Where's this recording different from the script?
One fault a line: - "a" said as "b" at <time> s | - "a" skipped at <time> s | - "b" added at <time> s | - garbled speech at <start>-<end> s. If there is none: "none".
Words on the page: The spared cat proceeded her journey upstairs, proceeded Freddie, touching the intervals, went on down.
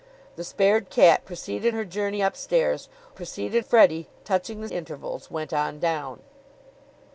none